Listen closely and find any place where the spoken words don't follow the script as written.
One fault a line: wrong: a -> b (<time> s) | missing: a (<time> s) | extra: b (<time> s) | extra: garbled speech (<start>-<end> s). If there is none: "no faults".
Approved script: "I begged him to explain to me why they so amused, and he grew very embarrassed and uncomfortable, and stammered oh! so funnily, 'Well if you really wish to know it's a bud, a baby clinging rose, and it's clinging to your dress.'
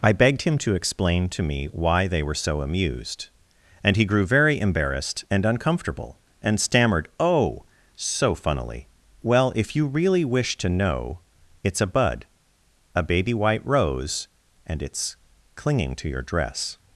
extra: were (2.2 s)
wrong: clinging -> white (13.3 s)